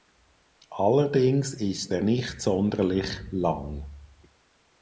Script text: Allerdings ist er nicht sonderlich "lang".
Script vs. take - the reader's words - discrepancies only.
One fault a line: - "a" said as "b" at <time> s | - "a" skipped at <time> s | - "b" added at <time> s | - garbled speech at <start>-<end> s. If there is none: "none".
none